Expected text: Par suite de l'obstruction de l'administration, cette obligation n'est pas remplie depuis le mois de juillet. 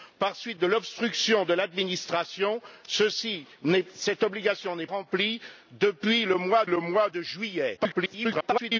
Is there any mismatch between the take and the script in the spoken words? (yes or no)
yes